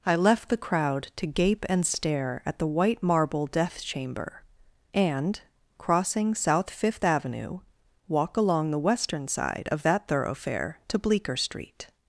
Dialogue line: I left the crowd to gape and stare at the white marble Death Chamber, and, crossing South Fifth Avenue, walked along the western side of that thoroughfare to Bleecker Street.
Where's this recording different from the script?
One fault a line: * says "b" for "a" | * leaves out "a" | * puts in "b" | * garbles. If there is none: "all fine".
* says "walk" for "walked"